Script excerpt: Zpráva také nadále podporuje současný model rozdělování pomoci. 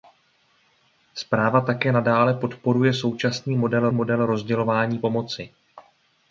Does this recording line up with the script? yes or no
no